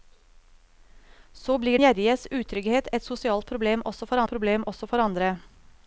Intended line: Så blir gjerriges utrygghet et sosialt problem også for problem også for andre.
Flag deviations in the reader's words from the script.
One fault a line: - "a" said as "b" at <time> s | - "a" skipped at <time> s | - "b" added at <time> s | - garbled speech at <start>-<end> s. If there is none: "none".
none